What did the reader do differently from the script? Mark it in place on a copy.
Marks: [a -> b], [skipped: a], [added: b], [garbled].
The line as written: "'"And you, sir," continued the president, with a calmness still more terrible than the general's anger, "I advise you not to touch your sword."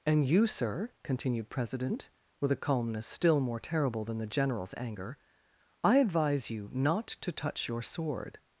"'"And you, sir," continued [skipped: the] president, with a calmness still more terrible than the general's anger, "I advise you not to touch your sword."